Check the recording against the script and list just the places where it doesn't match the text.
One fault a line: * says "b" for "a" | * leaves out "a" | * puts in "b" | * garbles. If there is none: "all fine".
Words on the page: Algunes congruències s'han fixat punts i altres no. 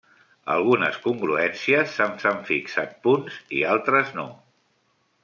* puts in "s'han"